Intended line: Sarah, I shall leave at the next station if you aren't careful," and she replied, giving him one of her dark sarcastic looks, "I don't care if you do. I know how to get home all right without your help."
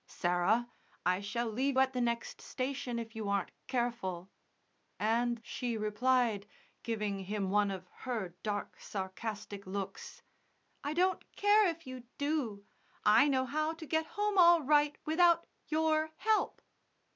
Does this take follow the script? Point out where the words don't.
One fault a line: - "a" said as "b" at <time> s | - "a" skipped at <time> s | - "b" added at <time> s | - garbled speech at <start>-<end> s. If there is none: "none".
none